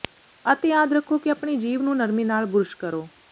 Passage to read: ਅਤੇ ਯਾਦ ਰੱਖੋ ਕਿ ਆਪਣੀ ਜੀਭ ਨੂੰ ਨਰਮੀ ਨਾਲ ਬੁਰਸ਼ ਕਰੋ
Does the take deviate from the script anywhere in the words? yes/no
no